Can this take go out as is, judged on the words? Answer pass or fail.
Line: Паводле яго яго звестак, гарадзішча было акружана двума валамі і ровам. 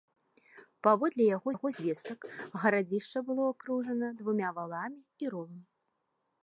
pass